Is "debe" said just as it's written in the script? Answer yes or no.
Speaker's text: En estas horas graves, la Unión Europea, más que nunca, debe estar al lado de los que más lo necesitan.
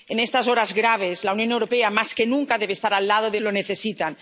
yes